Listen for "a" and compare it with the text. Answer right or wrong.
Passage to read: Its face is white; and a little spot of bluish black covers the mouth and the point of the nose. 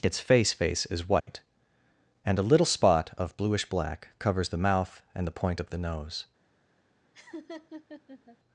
right